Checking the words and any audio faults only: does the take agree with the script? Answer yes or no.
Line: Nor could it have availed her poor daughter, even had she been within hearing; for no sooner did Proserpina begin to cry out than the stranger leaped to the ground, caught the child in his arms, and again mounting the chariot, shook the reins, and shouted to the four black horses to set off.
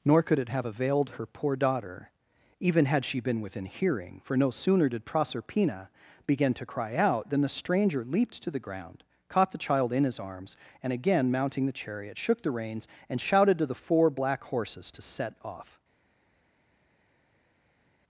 yes